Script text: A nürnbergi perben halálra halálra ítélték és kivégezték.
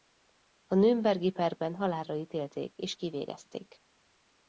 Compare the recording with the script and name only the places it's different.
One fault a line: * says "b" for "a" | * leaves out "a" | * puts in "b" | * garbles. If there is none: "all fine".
* leaves out "halálra"